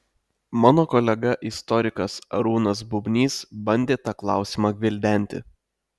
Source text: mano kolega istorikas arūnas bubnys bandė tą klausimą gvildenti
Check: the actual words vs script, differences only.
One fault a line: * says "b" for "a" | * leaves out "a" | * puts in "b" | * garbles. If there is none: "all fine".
all fine